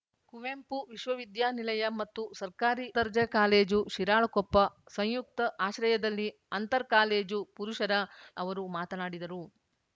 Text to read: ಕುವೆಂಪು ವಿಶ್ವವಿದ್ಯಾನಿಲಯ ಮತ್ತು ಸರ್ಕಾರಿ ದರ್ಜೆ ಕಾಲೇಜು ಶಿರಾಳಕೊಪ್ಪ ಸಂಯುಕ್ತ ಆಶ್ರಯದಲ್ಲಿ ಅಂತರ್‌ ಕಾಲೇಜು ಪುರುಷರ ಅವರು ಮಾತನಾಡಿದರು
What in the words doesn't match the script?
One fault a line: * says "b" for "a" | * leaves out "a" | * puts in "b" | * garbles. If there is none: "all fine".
all fine